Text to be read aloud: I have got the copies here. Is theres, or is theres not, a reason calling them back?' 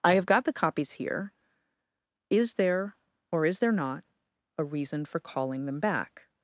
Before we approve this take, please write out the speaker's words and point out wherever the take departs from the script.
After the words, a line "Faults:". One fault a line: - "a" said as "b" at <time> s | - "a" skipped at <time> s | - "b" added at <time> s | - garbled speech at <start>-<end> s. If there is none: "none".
I have got the copies here. Is there, or is there not, a reason for calling them back?'
Faults:
- "theres" said as "there" at 2.5 s
- "theres" said as "there" at 3.6 s
- "for" added at 5.0 s